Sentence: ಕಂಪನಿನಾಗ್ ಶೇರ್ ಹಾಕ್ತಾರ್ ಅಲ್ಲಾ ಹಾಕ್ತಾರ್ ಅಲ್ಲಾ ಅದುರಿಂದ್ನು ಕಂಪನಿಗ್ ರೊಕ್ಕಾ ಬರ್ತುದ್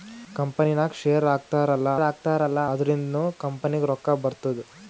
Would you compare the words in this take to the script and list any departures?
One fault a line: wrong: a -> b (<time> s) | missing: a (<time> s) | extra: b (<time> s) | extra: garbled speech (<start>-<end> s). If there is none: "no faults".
no faults